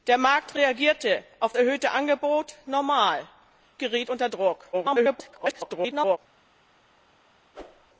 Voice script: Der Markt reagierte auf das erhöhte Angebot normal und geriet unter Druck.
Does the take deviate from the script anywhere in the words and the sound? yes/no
yes